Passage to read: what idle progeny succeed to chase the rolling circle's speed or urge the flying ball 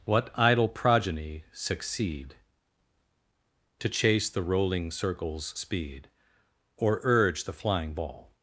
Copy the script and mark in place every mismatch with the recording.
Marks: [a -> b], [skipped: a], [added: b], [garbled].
what idle progeny succeed to chase the rolling circle's speed or urge the flying ball